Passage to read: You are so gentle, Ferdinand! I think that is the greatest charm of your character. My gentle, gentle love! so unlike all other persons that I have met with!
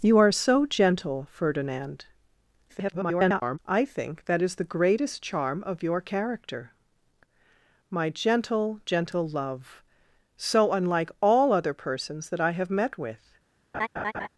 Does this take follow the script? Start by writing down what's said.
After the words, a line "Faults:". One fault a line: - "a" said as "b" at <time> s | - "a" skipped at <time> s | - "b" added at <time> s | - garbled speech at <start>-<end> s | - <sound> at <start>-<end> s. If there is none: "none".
You are so gentle, Ferdinand! [garbled] I think that is the greatest charm of your character. My gentle, gentle love! so unlike all other persons that I have met with!
Faults:
- garbled speech at 2.7-3.6 s
- laugh at 13.7-14.3 s